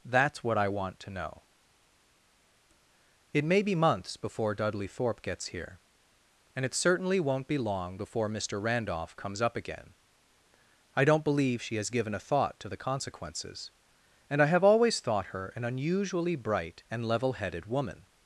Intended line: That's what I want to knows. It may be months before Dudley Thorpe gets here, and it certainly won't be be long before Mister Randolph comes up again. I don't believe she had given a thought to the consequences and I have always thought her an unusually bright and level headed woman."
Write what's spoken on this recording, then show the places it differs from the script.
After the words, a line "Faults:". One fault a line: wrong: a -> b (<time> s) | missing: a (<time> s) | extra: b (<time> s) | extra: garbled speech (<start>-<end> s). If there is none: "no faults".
That's what I want to know. It may be months before Dudley Thorpe gets here, and it certainly won't be long before Mister Randolph comes up again. I don't believe she has given a thought to the consequences and I have always thought her an unusually bright and level headed woman."
Faults:
wrong: knows -> know (1.1 s)
missing: be (7.6 s)
wrong: had -> has (11.8 s)